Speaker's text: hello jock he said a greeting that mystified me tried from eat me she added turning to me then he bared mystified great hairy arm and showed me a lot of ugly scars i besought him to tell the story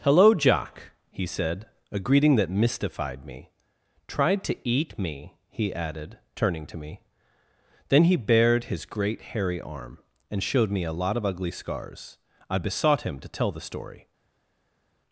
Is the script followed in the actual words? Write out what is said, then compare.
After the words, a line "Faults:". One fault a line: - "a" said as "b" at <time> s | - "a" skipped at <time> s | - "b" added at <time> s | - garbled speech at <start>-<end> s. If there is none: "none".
hello jock he said a greeting that mystified me tried to eat me he added turning to me then he bared his great hairy arm and showed me a lot of ugly scars i besought him to tell the story
Faults:
- "from" said as "to" at 4.5 s
- "she" said as "he" at 5.5 s
- "mystified" said as "his" at 8.7 s